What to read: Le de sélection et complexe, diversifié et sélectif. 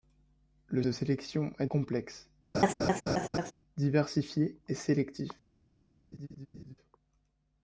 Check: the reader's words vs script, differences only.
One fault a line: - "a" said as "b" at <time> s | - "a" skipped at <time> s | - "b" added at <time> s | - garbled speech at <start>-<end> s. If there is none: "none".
none